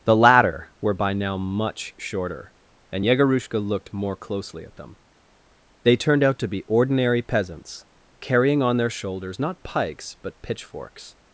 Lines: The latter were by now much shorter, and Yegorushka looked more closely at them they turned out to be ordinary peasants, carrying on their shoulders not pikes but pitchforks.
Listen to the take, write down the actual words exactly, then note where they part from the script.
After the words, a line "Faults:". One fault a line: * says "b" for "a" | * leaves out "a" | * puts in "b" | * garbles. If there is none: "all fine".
The latter were by now much shorter, and Yegorushka looked more closely at them they turned out to be ordinary peasants, carrying on their shoulders not pikes but pitchforks.
Faults:
all fine